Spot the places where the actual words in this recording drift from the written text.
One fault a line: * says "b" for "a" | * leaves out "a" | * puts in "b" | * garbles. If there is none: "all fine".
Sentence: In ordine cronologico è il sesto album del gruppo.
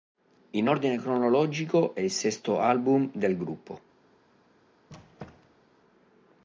all fine